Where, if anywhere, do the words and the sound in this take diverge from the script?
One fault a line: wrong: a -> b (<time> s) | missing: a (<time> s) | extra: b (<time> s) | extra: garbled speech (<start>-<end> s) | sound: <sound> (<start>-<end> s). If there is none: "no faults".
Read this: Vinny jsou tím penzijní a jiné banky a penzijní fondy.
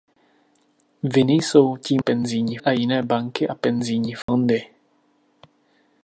sound: dropout (4.2-4.3 s)